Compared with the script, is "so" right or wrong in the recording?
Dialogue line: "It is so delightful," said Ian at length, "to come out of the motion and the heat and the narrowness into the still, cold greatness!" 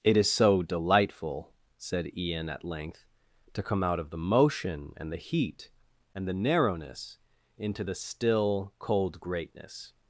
right